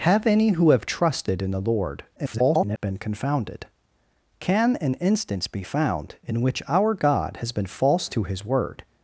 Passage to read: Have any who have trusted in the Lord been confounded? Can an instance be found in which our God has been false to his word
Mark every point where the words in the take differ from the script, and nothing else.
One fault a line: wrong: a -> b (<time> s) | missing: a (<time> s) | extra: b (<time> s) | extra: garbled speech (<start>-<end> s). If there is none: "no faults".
extra: garbled speech (2.2-2.8 s)